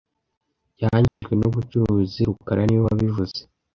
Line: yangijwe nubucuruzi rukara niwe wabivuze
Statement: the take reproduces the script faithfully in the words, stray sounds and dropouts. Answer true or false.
false